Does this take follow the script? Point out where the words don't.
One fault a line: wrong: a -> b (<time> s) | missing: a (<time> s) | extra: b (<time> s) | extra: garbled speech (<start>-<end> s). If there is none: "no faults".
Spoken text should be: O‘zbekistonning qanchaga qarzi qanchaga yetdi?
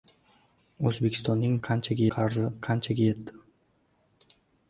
no faults